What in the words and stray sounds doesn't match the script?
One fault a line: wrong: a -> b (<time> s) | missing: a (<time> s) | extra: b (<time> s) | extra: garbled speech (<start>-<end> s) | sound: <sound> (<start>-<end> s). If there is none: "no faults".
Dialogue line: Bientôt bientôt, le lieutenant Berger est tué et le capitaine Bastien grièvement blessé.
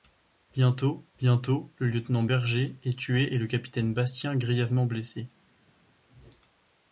no faults